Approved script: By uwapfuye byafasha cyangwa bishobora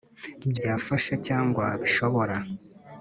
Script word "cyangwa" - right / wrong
right